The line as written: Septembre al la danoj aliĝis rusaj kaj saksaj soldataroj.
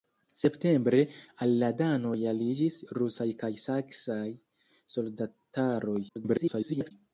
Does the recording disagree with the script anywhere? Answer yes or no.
yes